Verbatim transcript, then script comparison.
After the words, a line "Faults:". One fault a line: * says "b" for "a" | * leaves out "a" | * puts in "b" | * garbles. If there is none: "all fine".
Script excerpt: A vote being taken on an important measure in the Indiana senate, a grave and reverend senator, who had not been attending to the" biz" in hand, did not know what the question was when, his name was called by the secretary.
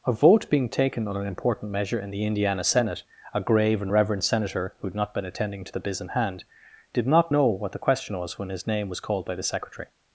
A vote being taken on an important measure in the Indiana senate, a grave and reverend senator, who had not been attending to the" biz" in hand, did not know what the question was when, his name was called by the secretary.
Faults:
all fine